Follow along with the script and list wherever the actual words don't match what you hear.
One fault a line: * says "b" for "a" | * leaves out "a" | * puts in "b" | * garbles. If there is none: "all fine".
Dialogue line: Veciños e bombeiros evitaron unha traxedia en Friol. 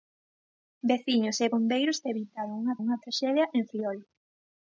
* puts in "unha"